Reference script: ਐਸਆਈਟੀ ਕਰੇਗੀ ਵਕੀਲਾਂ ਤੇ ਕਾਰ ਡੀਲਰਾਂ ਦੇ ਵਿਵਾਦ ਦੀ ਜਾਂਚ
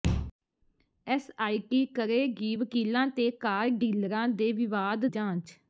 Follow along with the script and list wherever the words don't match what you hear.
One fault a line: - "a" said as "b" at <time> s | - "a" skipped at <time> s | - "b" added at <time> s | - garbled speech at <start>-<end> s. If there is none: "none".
- "ਦੀ" skipped at 5.1 s